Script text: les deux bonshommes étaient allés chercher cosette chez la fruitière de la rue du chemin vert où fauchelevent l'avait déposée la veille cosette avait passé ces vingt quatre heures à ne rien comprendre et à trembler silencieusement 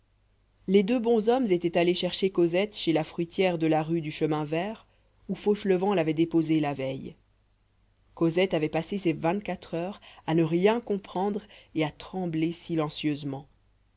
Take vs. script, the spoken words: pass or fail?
pass